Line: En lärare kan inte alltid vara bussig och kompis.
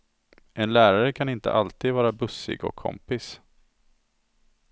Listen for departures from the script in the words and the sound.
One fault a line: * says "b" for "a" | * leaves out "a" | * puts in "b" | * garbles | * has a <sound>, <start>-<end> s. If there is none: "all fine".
all fine